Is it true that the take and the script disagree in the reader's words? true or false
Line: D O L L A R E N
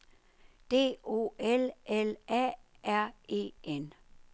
false